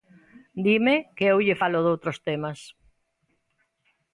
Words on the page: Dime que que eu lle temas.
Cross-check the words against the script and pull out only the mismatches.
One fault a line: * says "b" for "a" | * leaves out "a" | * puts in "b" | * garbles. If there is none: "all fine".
* leaves out "que"
* puts in "falo doutros"